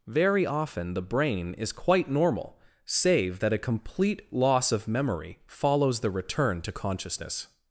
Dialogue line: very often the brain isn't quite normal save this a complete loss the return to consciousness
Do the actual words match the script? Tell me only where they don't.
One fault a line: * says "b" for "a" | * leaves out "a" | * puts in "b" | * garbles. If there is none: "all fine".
* says "is" for "isn't"
* says "that" for "this"
* puts in "of memory follows"